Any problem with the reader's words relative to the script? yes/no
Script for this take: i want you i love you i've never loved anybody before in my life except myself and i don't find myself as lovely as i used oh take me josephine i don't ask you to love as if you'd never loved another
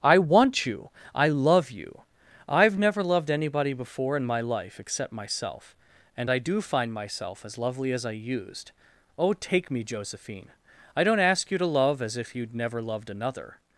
yes